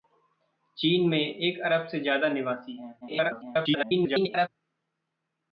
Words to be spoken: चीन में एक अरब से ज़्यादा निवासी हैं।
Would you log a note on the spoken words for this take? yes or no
yes